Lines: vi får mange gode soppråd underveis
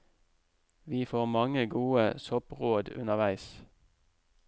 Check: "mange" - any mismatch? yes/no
no